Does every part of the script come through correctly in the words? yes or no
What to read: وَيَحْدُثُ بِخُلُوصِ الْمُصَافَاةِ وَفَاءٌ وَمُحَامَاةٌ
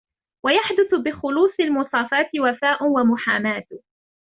yes